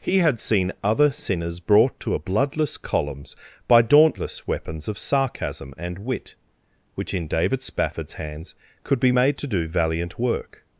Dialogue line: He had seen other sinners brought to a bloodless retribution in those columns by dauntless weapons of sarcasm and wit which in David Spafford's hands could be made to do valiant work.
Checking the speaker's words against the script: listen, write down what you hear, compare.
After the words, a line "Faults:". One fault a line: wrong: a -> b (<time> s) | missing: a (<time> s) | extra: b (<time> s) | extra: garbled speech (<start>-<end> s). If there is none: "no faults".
He had seen other sinners brought to a bloodless columns by dauntless weapons of sarcasm and wit which in David Spafford's hands could be made to do valiant work.
Faults:
missing: retribution in those (2.8 s)